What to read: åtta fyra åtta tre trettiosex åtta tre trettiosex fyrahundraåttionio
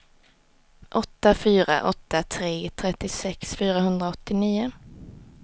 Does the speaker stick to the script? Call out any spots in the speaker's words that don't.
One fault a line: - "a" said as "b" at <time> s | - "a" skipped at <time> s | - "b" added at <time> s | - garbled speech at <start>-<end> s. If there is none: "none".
- "åtta tre trettiosex" skipped at 3.6 s